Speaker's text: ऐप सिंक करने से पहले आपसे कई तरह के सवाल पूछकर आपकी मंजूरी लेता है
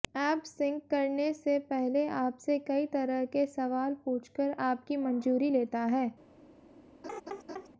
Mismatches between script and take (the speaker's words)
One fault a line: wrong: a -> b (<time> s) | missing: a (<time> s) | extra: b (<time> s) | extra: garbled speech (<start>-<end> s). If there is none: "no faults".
no faults